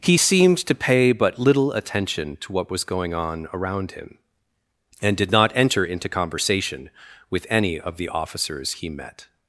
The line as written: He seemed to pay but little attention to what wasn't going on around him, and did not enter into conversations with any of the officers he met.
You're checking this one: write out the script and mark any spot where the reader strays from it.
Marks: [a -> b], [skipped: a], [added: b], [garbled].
He seemed to pay but little attention to what [wasn't -> was] going on around him, and did not enter into [conversations -> conversation] with any of the officers he met.